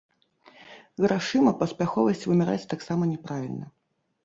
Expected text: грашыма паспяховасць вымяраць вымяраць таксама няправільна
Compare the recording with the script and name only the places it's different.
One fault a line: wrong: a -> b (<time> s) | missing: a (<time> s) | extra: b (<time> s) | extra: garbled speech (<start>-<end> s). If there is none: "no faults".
missing: вымяраць (2.7 s)